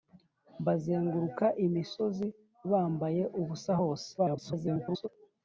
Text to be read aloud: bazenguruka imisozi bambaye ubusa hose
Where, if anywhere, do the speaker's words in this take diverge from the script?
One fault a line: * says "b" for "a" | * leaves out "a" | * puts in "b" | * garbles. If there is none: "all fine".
* garbles